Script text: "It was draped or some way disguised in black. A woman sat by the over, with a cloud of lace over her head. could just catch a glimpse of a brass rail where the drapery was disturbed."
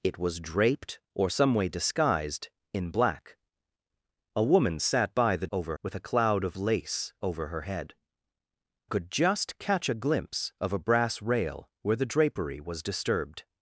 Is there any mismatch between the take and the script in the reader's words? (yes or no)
no